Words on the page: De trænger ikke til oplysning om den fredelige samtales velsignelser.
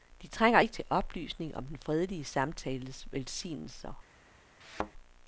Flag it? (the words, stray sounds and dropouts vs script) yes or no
yes